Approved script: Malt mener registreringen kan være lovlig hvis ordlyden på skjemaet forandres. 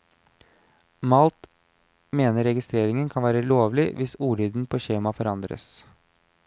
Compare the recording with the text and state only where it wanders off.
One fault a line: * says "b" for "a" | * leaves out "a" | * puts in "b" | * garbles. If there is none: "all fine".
all fine